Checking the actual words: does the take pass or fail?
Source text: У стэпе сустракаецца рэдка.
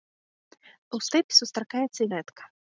pass